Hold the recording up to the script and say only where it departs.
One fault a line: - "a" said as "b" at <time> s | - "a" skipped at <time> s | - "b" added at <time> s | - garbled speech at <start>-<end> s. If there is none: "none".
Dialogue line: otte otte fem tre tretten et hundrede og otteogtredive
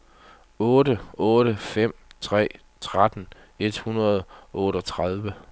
none